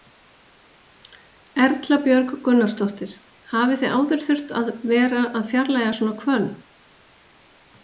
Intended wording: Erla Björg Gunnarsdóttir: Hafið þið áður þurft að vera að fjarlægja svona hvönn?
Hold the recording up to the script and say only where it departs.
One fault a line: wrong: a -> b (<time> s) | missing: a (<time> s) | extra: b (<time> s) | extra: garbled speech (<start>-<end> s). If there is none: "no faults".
no faults